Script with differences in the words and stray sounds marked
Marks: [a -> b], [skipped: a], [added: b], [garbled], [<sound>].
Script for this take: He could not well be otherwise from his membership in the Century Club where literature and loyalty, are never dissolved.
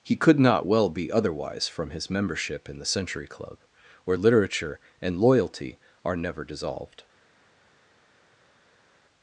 He could not well be otherwise from his membership in the Century Club where literature and loyalty, are never dissolved.